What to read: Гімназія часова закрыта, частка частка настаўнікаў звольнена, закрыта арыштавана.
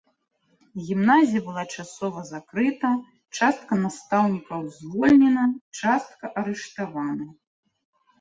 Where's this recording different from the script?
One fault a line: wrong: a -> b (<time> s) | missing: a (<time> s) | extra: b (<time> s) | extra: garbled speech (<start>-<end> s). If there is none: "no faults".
extra: была (1.5 s)
missing: частка (3.7 s)
wrong: закрыта -> частка (5.8 s)